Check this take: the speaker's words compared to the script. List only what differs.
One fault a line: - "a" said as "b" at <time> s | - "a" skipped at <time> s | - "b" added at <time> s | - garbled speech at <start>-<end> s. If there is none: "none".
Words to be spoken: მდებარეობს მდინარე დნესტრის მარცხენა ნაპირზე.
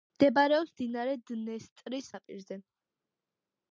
- "მარცხენა" skipped at 2.1 s